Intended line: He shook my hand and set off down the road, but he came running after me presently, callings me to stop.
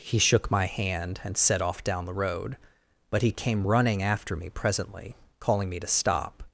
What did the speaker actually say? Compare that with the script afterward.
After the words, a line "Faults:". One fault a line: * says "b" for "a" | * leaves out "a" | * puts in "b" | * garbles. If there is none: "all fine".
He shook my hand and set off down the road, but he came running after me presently, calling me to stop.
Faults:
* says "calling" for "callings"